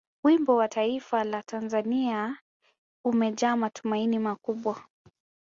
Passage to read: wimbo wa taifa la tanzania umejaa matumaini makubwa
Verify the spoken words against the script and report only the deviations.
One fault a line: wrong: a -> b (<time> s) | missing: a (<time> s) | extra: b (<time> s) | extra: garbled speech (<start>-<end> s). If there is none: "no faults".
no faults